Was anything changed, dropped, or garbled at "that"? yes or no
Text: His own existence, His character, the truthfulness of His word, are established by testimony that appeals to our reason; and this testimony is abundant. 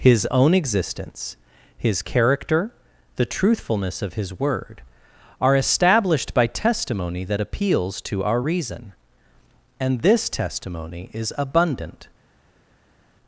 no